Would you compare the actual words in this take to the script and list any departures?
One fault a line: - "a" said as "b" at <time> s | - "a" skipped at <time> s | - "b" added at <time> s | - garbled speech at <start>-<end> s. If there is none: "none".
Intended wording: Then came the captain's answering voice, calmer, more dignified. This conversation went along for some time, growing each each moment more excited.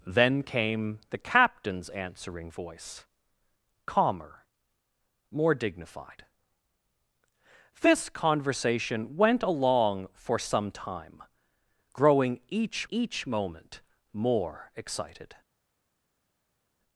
none